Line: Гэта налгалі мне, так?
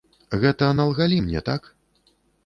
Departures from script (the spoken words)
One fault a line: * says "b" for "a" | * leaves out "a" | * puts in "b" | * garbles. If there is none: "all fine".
all fine